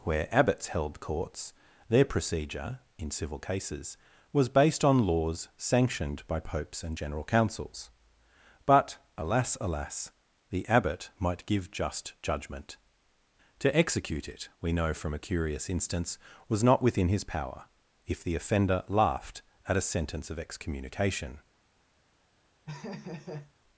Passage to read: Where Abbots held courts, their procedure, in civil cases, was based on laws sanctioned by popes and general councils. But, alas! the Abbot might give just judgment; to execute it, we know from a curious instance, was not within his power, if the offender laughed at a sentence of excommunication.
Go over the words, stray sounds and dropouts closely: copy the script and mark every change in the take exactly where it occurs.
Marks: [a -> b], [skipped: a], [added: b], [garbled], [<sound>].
Where Abbots held courts, their procedure, in civil cases, was based on laws sanctioned by popes and general councils. But, alas! [added: alas] the Abbot might give just judgment; to execute it, we know from a curious instance, was not within his power, if the offender laughed at a sentence of excommunication. [laugh]